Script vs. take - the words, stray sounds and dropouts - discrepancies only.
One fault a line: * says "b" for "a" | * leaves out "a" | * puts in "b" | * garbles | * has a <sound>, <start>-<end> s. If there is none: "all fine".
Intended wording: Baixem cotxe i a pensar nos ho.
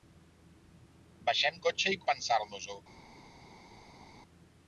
all fine